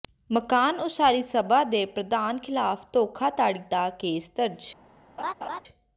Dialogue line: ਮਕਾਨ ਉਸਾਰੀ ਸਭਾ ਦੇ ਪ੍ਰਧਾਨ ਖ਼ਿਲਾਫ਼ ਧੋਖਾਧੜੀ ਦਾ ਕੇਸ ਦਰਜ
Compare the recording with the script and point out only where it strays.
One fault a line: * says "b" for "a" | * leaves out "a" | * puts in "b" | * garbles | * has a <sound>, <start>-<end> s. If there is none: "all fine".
* has a laugh, 5.2-5.6 s